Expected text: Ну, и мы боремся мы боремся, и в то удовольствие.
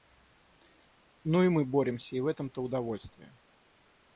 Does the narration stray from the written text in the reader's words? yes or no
yes